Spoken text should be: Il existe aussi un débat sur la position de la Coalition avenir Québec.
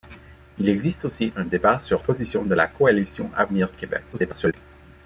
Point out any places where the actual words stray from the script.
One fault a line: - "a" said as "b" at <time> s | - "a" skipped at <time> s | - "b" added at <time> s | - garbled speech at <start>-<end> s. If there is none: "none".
- "la" skipped at 2.0 s
- garbled speech at 4.1-4.5 s